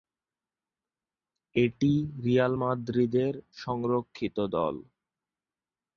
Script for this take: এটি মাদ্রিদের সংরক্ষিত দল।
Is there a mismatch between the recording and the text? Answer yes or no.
yes